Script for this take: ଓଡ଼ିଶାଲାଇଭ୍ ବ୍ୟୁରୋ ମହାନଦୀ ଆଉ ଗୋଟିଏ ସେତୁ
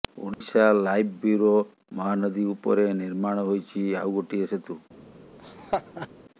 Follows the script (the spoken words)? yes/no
no